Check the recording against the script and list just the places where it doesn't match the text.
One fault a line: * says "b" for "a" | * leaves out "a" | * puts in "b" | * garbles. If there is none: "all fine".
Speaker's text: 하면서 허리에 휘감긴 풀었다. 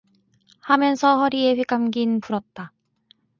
all fine